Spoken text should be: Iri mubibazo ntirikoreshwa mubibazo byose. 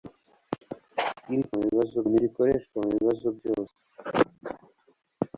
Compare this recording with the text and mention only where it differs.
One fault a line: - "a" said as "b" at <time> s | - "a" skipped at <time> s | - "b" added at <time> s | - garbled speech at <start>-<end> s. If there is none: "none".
none